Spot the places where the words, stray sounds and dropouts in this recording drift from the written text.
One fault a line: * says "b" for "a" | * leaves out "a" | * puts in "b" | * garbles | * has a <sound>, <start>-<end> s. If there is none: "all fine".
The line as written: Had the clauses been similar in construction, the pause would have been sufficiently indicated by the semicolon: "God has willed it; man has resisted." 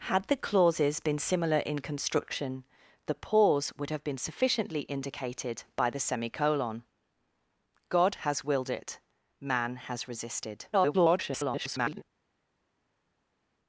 * garbles